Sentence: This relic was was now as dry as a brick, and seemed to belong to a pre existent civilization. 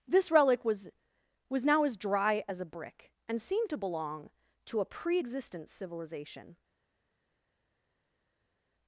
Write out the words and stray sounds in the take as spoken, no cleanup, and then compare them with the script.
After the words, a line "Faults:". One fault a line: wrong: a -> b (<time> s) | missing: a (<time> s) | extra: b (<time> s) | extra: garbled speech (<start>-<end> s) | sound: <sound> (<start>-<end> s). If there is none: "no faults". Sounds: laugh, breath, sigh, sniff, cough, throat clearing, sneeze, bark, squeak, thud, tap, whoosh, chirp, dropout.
This relic was was now as dry as a brick, and seemed to belong to a pre existent civilization.
Faults:
no faults